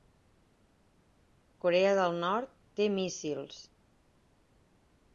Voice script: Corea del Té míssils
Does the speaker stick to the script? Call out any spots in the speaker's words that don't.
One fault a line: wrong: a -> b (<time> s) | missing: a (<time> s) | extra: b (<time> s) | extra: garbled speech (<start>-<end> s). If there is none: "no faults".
extra: Nord (2.2 s)